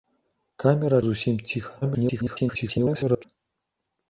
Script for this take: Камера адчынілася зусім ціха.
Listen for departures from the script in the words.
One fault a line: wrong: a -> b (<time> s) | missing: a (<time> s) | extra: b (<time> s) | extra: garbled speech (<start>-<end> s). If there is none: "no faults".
missing: адчынілася (1.0 s)
extra: garbled speech (1.8-3.2 s)